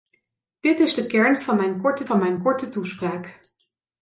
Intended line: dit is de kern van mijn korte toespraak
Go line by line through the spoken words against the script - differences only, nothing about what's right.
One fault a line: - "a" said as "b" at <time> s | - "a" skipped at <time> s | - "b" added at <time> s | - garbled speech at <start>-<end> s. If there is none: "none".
- "van mijn korte" added at 2.0 s